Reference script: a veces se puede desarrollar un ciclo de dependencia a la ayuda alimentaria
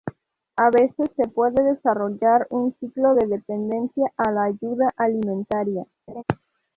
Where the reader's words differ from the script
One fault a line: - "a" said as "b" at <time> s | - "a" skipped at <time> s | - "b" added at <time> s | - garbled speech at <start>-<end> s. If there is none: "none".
none